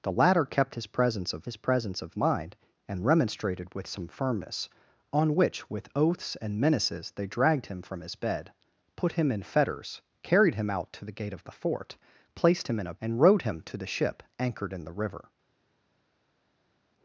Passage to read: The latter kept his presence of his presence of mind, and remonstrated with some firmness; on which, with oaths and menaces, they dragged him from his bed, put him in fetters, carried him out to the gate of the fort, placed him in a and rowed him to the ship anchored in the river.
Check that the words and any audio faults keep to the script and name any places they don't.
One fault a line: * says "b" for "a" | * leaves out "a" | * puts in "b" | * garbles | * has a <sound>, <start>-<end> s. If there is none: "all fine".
all fine